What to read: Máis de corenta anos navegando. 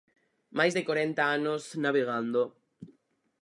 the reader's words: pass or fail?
pass